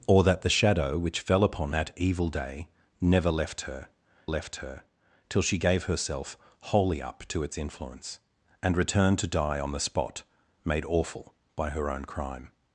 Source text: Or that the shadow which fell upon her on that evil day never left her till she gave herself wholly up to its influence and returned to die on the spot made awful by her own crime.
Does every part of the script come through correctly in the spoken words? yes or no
no